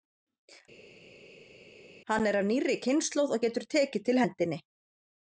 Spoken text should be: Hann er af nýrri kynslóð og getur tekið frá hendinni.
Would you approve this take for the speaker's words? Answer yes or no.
no